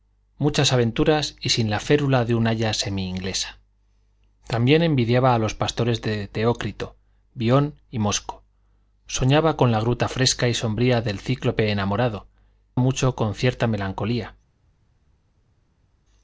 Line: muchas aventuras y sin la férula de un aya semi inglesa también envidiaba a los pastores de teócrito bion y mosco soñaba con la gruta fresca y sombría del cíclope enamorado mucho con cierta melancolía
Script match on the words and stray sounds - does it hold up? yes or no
yes